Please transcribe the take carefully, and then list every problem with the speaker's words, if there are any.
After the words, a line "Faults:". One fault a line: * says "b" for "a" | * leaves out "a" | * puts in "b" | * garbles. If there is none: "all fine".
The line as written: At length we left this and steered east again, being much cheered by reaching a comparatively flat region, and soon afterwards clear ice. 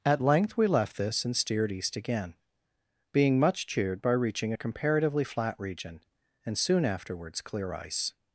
At length we left this and steered east again, being much cheered by reaching a comparatively flat region, and soon afterwards clear ice.
Faults:
all fine